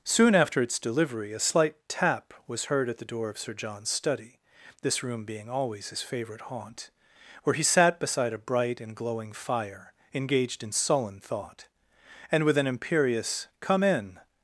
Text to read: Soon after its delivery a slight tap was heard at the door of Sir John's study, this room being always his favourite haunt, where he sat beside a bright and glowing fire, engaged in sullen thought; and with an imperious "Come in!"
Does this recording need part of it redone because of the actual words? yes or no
no